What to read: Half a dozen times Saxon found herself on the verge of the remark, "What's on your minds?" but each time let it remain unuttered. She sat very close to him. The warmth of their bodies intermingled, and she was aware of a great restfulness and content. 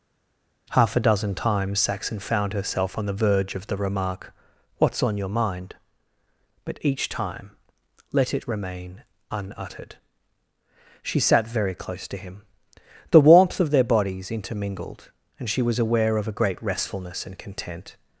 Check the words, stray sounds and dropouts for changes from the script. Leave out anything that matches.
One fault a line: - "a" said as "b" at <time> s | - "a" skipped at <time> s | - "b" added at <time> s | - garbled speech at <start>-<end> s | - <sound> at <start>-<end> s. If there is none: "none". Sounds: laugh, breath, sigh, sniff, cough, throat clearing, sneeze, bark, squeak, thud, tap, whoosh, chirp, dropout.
- "minds" said as "mind" at 5.3 s